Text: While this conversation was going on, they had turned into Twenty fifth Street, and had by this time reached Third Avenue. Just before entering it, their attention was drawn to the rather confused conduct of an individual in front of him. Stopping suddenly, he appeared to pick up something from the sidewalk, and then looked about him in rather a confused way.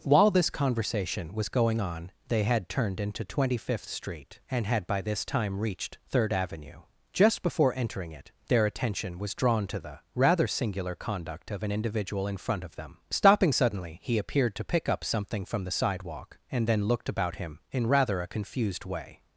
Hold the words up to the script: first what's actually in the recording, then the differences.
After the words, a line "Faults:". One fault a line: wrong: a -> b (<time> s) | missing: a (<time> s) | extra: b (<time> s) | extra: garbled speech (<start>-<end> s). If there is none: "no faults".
While this conversation was going on, they had turned into Twenty fifth Street, and had by this time reached Third Avenue. Just before entering it, their attention was drawn to the rather singular conduct of an individual in front of them. Stopping suddenly, he appeared to pick up something from the sidewalk, and then looked about him in rather a confused way.
Faults:
wrong: confused -> singular (10.5 s)
wrong: him -> them (12.8 s)